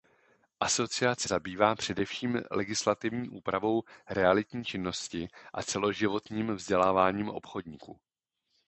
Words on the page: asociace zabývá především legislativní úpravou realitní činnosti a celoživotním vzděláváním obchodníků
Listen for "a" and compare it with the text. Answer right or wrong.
right